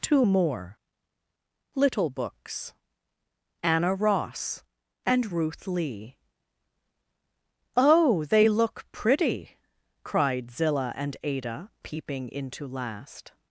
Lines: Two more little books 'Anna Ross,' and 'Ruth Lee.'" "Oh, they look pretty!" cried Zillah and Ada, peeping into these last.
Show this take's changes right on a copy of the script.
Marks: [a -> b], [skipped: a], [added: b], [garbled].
Two more little books 'Anna Ross,' and 'Ruth Lee.'" "Oh, they look pretty!" cried Zillah and Ada, peeping into [skipped: these] last.